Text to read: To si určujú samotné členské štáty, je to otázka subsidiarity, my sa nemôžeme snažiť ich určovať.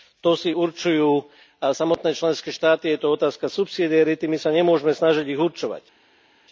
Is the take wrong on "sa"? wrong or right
right